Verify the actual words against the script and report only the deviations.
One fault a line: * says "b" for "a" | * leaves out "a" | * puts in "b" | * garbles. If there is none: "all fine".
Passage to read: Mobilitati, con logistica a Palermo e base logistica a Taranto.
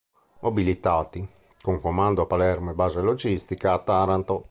* says "comando" for "logistica"